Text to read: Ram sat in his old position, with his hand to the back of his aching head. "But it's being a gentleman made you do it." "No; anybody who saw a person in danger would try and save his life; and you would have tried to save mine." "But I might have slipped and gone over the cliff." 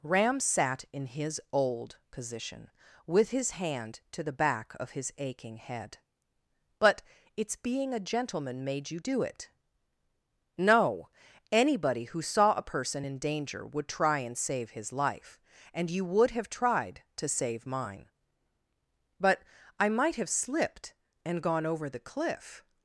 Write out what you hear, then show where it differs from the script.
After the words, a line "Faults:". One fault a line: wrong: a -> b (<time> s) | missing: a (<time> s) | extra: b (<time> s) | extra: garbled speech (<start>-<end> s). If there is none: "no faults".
Ram sat in his old position, with his hand to the back of his aching head. "But it's being a gentleman made you do it." "No; anybody who saw a person in danger would try and save his life; and you would have tried to save mine." "But I might have slipped and gone over the cliff."
Faults:
no faults